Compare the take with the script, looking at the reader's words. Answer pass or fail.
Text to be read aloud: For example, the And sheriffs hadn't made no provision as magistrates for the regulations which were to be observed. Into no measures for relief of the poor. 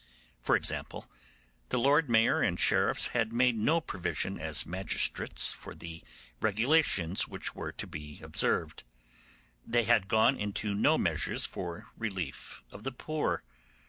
fail